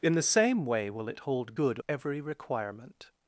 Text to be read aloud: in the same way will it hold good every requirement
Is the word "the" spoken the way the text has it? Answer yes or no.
yes